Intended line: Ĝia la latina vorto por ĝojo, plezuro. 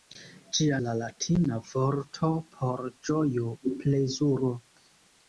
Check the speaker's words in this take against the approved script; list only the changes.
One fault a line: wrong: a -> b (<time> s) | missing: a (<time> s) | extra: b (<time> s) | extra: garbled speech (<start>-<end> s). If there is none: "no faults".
no faults